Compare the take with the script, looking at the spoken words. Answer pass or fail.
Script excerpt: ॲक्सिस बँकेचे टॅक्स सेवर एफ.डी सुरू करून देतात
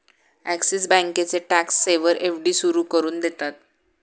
pass